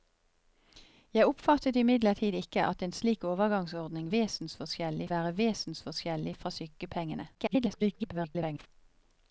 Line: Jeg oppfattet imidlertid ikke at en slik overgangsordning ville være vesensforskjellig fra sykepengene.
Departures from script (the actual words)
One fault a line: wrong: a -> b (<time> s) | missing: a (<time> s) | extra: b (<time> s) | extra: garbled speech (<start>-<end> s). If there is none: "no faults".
wrong: ville -> vesensforskjellig (4.1 s)
extra: garbled speech (7.3-8.7 s)